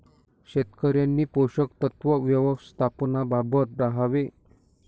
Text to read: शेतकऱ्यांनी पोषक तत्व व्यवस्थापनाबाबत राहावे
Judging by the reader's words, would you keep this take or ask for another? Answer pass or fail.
pass